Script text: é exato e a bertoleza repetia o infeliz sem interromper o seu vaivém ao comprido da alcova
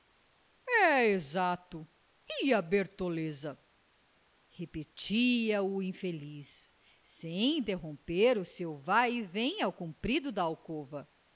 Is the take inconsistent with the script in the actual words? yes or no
no